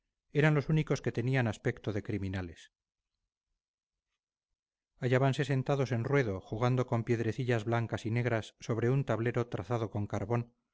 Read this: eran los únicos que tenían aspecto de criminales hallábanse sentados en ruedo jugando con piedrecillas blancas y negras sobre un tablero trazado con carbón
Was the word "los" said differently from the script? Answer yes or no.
no